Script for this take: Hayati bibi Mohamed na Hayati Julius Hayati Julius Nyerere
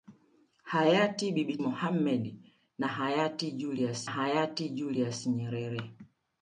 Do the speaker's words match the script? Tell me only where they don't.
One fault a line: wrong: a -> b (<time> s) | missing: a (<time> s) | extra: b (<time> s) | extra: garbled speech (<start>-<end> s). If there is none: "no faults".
no faults